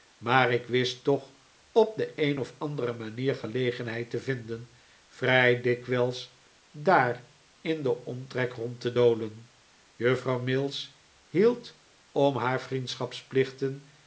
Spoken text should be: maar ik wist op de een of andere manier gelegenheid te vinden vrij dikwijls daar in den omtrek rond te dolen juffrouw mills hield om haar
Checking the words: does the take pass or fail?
fail